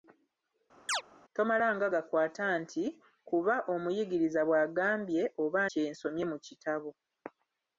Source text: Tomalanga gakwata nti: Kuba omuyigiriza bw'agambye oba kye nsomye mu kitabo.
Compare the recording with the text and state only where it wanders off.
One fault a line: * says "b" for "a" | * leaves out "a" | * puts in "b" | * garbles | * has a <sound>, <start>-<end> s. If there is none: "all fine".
* has a chirp, 0.9-1.0 s